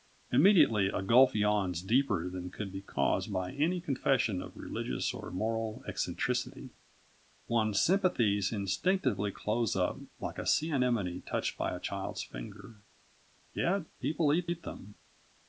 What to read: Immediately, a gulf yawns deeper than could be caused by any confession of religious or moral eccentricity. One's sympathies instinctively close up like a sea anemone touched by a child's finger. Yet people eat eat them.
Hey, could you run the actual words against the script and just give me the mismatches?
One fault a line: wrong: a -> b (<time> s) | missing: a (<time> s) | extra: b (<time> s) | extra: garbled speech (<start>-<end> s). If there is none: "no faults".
no faults